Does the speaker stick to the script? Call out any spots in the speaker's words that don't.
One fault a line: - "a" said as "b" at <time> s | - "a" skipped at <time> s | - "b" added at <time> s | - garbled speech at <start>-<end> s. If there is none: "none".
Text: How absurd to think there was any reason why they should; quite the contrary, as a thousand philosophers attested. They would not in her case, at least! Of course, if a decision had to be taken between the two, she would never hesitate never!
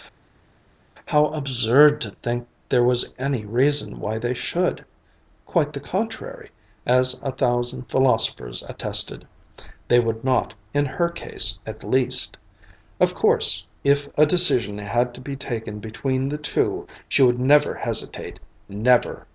none